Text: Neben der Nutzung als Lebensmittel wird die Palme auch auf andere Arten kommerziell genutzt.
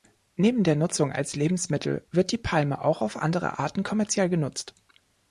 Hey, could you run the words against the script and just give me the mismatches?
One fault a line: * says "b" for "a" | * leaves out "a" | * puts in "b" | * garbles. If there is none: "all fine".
all fine